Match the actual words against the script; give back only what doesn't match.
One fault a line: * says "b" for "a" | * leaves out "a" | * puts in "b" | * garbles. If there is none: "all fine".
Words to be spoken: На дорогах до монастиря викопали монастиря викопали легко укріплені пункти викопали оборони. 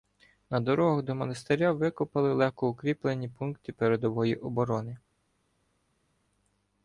* leaves out "монастиря викопали"
* says "передової" for "викопали"